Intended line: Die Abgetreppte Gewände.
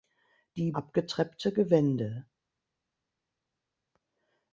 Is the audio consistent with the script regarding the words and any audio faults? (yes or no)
yes